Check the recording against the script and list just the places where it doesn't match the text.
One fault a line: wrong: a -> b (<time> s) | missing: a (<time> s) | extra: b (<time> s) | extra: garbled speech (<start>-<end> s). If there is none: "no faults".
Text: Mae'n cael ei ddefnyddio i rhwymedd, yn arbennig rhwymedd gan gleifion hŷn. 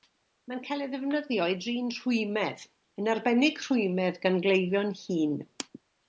extra: drin (1.6 s)